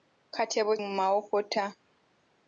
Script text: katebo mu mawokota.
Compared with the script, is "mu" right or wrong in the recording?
right